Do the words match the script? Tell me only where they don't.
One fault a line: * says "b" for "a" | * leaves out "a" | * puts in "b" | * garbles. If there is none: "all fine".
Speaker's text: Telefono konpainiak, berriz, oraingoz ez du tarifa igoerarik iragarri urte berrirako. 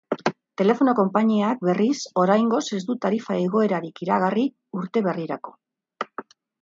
all fine